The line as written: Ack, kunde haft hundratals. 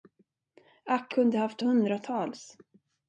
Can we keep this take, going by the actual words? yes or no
yes